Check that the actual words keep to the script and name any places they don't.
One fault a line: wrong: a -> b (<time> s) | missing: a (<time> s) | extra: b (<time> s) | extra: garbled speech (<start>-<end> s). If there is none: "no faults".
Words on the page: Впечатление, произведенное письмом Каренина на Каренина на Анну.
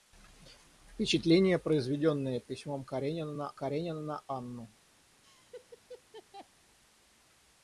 no faults